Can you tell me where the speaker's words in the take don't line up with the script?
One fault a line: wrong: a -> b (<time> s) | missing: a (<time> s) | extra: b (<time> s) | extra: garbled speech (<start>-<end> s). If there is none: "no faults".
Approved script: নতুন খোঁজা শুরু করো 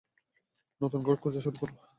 extra: ঘর (1.0 s)